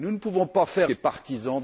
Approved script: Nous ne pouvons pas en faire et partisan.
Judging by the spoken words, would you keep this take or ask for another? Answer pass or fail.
pass